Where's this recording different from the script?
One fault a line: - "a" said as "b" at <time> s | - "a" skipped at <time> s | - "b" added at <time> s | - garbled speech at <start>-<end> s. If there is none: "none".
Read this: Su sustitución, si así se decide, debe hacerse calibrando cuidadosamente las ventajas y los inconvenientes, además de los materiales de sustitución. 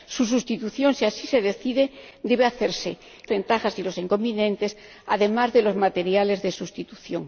- "calibrando cuidadosamente las" skipped at 3.0 s